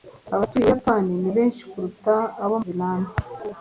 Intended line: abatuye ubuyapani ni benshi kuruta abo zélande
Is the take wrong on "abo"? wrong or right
right